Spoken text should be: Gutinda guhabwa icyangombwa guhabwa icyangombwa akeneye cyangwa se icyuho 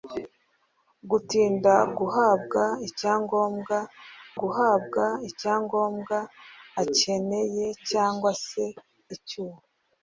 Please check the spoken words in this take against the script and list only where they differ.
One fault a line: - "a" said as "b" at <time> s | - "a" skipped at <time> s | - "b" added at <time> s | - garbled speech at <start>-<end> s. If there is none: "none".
none